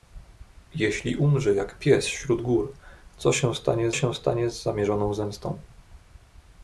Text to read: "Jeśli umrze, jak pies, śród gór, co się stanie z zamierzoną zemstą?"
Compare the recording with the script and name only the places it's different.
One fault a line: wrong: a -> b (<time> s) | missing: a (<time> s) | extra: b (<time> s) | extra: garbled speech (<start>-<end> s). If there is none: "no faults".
extra: się stanie (3.9 s)